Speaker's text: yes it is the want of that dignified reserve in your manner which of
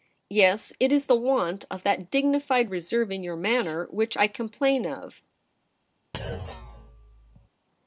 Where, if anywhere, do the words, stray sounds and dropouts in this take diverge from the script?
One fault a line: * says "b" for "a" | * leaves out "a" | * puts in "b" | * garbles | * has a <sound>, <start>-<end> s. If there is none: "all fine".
* puts in "i complain"
* has a thud, 6.1-7.5 s